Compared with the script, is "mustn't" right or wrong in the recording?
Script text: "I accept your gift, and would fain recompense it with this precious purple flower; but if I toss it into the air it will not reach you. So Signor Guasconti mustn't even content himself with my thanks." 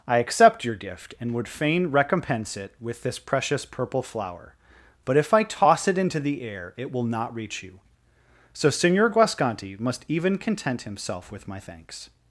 wrong